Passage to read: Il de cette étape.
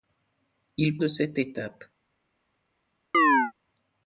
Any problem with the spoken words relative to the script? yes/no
no